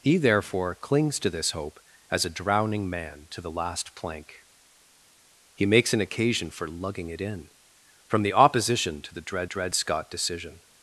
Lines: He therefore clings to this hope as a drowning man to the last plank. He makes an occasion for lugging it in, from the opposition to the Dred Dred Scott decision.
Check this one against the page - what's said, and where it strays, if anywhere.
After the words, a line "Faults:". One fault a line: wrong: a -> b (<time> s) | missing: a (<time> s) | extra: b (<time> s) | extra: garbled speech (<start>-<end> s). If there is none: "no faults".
He therefore clings to this hope as a drowning man to the last plank. He makes an occasion for lugging it in, from the opposition to the Dred Dred Scott decision.
Faults:
no faults